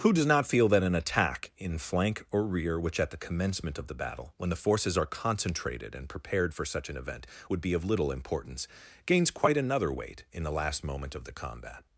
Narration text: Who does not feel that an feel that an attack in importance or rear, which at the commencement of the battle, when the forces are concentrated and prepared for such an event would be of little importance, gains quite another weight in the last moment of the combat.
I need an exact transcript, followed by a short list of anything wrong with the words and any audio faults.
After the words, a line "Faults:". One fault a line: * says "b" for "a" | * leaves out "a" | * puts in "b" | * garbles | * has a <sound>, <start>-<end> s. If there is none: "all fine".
Who does not feel that an attack in flank or rear, which at the commencement of the battle, when the forces are concentrated and prepared for such an event would be of little importance, gains quite another weight in the last moment of the combat.
Faults:
* leaves out "feel that an"
* says "flank" for "importance"